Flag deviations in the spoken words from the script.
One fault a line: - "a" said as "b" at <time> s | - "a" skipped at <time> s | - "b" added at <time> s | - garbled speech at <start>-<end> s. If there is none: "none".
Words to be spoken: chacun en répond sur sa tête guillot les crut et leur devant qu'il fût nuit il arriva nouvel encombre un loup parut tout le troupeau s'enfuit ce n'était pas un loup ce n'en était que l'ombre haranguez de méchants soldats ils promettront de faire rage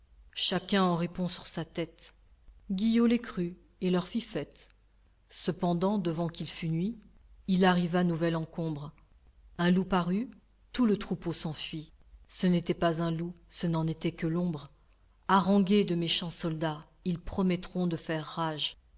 - "fit fête cependant" added at 4.0 s